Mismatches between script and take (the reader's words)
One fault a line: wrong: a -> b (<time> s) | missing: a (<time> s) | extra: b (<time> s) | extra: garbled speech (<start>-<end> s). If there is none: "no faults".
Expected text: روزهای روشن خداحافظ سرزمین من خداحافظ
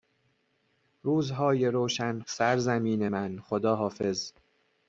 missing: خداحافظ (2.2 s)